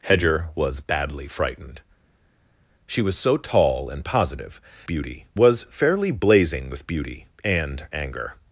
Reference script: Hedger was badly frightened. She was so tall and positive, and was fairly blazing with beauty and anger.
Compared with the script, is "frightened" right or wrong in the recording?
right